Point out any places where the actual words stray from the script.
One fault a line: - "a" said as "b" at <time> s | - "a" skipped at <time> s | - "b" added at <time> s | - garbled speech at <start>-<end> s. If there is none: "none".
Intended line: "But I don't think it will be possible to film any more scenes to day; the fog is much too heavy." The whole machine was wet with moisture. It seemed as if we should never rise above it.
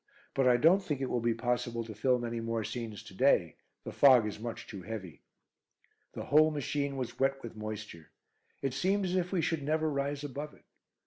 none